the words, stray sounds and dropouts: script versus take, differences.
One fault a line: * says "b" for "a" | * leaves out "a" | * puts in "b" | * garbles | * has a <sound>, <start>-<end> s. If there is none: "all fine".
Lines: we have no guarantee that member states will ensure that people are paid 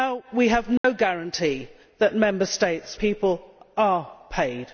* has a dropout, 0.8-0.8 s
* leaves out "will ensure that"